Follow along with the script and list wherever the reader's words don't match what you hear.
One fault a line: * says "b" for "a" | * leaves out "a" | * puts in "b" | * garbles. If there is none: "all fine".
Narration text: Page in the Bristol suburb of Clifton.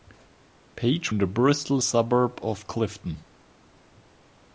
all fine